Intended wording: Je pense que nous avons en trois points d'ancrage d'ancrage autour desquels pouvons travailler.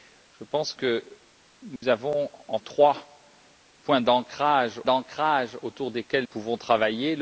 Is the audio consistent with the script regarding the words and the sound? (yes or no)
no